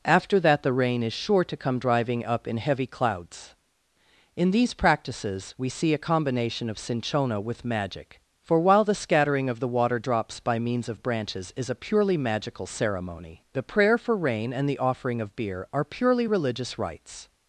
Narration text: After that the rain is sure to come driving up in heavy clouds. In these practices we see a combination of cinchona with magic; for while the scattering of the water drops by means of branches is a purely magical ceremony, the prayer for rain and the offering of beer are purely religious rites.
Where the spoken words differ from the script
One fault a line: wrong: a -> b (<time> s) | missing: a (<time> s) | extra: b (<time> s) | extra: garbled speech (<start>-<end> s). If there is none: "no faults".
no faults